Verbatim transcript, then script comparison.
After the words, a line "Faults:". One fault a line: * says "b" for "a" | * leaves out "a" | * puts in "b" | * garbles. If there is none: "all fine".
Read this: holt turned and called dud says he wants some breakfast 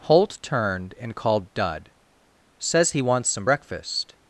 holt turned and called dud says he wants some breakfast
Faults:
all fine